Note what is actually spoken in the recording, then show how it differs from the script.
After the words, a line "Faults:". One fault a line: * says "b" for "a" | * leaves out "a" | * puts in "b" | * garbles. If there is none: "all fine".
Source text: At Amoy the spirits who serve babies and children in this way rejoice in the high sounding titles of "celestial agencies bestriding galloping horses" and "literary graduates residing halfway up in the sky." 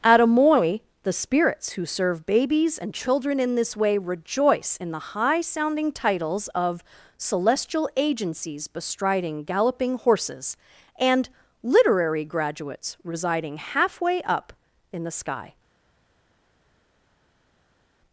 At Amoy the spirits who serve babies and children in this way rejoice in the high sounding titles of "celestial agencies bestriding galloping horses" and "literary graduates residing halfway up in the sky."
Faults:
all fine